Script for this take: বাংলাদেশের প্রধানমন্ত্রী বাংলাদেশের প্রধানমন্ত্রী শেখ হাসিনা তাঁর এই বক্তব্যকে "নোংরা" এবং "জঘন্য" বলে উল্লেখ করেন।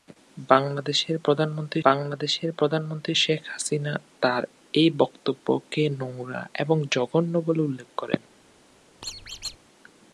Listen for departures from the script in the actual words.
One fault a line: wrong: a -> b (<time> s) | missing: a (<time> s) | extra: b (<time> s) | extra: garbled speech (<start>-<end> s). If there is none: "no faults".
no faults